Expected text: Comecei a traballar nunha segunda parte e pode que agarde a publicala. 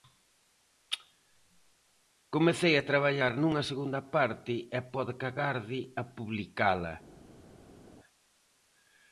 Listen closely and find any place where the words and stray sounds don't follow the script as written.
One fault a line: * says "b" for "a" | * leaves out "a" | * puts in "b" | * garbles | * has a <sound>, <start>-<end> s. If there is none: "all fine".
all fine